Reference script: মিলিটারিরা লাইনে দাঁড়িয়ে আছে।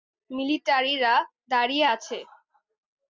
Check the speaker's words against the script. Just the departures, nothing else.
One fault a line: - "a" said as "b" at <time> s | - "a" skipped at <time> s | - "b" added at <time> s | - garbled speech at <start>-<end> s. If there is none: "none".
- "লাইনে" skipped at 1.1 s